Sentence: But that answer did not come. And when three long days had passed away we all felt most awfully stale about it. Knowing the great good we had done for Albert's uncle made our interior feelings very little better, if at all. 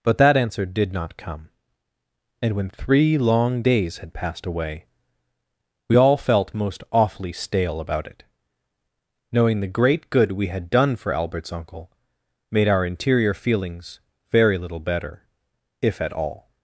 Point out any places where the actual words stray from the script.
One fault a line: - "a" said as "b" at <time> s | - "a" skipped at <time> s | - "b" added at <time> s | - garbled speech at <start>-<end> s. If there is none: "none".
none